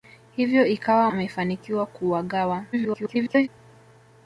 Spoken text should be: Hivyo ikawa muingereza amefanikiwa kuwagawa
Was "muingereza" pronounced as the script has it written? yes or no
no